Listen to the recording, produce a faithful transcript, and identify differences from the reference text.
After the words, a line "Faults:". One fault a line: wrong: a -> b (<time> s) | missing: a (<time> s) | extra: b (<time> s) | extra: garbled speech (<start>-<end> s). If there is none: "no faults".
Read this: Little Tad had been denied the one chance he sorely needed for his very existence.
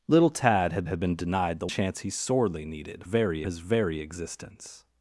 Little Tad had had been denied the chance he sorely needed very his very existence.
Faults:
extra: had (0.9 s)
missing: one (1.7 s)
wrong: for -> very (3.0 s)